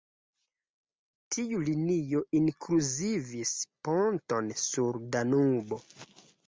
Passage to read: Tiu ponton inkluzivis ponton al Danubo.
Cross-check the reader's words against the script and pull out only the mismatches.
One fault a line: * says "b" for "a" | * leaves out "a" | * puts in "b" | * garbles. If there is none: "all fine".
* says "linio" for "ponton"
* says "sur" for "al"